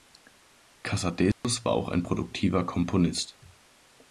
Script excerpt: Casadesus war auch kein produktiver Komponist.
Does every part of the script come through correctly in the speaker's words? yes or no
no